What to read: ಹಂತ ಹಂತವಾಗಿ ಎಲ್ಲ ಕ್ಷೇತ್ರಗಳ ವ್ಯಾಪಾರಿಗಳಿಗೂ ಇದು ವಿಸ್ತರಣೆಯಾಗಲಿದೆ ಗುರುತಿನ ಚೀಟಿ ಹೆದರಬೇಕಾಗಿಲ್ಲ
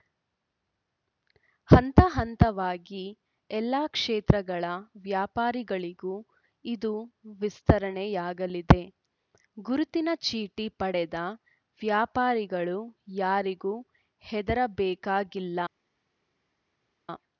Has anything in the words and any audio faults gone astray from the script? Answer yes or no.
yes